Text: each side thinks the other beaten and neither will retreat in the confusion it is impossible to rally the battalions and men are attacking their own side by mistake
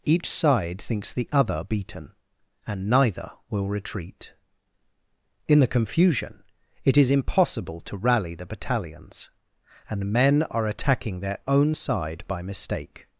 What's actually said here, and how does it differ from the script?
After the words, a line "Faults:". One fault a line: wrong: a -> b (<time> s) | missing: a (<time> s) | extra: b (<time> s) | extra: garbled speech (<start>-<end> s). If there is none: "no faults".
each side thinks the other beaten and neither will retreat in the confusion it is impossible to rally the battalions and men are attacking their own side by mistake
Faults:
no faults